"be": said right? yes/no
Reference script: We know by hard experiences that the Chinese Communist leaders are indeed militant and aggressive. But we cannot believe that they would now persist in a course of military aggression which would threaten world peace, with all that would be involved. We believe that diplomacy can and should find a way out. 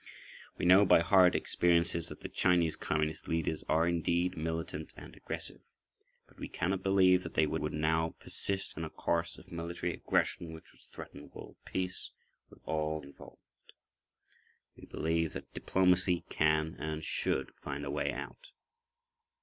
no